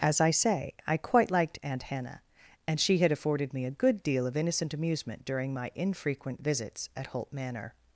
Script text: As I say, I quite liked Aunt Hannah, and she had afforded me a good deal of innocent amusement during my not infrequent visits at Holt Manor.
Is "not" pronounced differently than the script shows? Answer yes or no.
yes